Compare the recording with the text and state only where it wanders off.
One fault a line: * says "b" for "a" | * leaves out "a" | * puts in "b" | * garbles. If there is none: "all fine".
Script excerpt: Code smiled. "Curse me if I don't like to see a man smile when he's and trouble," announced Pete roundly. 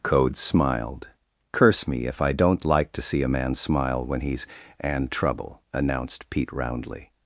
all fine